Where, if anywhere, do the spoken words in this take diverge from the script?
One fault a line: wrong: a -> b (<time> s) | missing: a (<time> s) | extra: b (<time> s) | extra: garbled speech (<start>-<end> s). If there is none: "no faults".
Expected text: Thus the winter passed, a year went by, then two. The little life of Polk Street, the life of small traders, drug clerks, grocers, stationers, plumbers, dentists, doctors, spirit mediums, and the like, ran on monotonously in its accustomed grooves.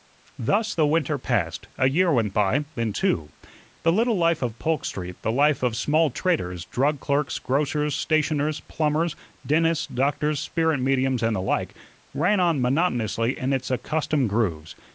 no faults